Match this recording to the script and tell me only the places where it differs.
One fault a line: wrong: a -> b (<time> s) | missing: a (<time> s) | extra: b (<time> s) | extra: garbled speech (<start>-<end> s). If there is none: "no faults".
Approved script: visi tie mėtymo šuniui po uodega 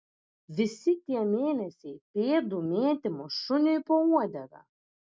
extra: mėnesiai pėdų (1.3 s)